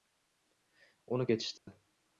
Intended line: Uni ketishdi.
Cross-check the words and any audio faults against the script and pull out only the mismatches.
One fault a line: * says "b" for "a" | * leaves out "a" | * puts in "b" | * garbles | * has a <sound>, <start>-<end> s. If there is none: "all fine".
* has a dropout, 1.6-1.7 s